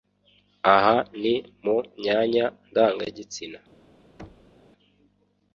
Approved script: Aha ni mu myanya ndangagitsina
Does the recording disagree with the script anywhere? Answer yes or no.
no